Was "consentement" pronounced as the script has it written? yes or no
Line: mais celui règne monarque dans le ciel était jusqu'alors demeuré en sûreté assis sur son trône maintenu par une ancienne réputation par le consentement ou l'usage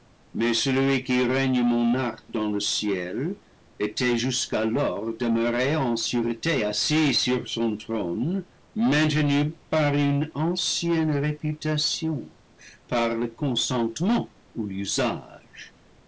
yes